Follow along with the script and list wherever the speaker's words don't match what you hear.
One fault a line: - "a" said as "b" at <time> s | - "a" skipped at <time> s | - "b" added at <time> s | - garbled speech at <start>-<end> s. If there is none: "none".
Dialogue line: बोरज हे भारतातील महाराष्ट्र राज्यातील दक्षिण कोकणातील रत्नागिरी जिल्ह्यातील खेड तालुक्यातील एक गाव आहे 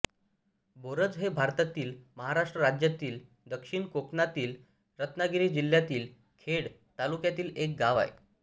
none